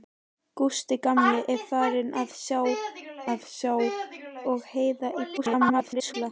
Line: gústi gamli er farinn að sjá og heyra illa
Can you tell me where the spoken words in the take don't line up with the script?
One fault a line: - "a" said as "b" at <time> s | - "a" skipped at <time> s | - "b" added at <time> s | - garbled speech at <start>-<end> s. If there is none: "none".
- "að sjá" added at 3.3 s
- garbled speech at 5.4-6.1 s